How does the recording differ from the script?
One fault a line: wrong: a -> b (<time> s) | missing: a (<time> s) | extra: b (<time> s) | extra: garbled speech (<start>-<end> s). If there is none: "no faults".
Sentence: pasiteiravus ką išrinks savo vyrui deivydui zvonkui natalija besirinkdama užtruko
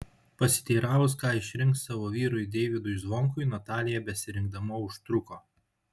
no faults